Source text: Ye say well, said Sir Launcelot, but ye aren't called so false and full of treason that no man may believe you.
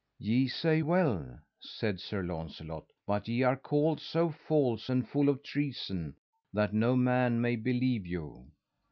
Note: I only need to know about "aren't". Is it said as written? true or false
false